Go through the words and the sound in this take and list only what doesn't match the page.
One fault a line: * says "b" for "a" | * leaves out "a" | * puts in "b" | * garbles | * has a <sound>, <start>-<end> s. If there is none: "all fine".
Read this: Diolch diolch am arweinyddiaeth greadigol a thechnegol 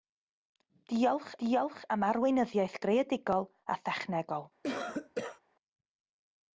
* has a cough, 4.6-5.4 s